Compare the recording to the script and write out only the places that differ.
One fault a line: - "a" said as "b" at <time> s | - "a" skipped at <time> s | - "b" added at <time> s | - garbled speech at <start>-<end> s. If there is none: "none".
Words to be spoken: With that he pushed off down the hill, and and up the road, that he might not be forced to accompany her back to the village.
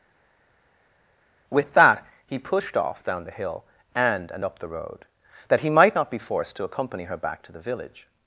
none